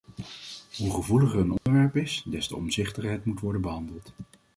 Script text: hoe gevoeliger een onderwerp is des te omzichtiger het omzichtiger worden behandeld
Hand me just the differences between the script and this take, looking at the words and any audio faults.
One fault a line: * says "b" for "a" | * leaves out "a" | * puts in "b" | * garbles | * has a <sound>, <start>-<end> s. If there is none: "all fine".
* has a dropout, 1.6-1.7 s
* says "moet" for "omzichtiger"